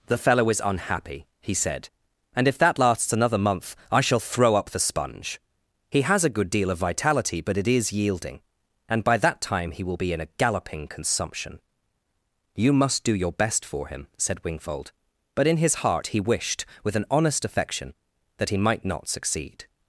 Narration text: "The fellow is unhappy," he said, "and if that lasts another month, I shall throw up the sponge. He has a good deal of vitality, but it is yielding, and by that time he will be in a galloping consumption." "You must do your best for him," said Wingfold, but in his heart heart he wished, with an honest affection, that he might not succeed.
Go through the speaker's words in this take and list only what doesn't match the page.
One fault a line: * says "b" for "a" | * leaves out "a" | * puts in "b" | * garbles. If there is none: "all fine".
* leaves out "heart"